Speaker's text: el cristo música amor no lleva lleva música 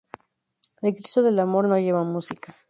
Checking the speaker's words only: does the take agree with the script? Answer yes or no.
no